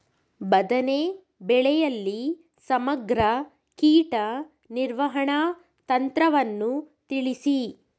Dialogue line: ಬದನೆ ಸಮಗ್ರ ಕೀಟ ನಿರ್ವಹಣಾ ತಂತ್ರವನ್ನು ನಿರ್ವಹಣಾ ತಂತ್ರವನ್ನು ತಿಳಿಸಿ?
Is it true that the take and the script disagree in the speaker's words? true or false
true